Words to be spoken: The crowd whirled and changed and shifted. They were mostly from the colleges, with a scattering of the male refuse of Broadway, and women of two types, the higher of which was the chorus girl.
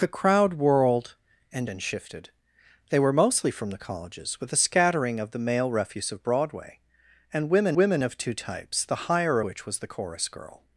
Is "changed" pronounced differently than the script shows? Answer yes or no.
yes